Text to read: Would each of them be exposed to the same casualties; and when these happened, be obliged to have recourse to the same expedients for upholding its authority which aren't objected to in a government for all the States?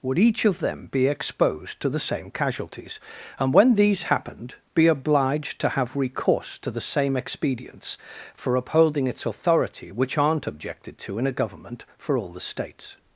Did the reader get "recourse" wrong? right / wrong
right